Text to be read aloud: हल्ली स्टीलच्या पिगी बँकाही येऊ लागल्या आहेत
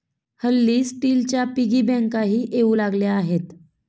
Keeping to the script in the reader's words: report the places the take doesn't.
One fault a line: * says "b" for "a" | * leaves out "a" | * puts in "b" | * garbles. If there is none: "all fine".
all fine